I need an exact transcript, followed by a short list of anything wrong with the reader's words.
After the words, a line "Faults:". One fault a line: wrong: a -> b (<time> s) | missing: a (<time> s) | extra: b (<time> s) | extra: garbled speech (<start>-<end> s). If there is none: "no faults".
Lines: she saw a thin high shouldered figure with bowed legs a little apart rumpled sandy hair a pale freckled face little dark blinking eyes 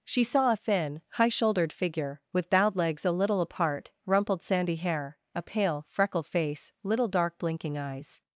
she saw a thin high shouldered figure with bowed legs a little apart rumpled sandy hair a pale freckled face little dark blinking eyes
Faults:
no faults